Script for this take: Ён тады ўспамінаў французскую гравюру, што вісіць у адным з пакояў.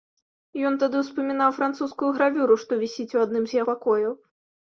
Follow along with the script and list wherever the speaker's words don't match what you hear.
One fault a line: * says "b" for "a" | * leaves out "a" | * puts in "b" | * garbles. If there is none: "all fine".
all fine